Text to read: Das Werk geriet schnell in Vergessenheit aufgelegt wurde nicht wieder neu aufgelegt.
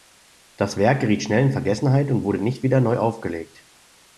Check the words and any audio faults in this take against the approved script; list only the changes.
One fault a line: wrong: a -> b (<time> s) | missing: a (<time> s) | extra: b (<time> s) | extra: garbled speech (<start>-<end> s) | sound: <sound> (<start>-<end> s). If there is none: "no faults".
wrong: aufgelegt -> und (2.1 s)